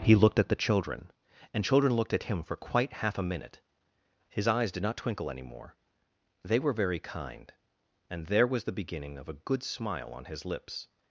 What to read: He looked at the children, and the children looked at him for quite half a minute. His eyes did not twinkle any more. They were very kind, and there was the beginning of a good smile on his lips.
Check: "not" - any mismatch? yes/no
no